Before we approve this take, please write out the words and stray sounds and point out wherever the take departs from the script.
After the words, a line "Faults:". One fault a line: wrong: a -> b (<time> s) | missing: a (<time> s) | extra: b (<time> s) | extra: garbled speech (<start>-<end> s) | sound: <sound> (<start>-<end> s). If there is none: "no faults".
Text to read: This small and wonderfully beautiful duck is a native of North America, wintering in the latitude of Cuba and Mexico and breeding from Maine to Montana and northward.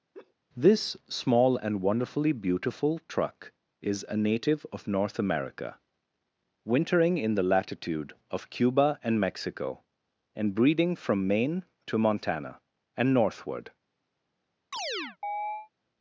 This small and wonderfully beautiful truck is a native of North America, wintering in the latitude of Cuba and Mexico and breeding from Maine to Montana and northward.
Faults:
sound: laugh (0.1-0.3 s)
wrong: duck -> truck (3.1 s)
sound: chirp (14.7-15.7 s)